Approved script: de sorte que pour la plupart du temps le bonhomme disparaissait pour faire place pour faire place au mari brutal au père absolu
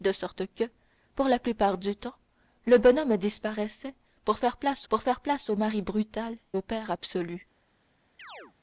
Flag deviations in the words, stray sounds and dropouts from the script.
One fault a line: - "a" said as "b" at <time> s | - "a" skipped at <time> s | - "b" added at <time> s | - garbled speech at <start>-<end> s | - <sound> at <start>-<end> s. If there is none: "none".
- chirp at 8.2-8.5 s